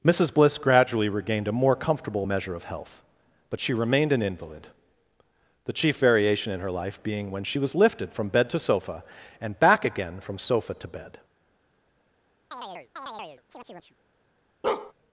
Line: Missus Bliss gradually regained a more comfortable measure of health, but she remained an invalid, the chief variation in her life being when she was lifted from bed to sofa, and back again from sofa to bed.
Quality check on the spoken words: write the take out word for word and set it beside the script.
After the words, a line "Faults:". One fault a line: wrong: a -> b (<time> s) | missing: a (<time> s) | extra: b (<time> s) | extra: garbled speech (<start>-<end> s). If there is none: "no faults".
Missus Bliss gradually regained a more comfortable measure of health, but she remained an invalid, the chief variation in her life being when she was lifted from bed to sofa, and back again from sofa to bed.
Faults:
no faults